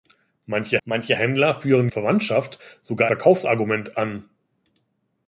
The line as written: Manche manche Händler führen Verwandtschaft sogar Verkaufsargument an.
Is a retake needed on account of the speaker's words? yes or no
no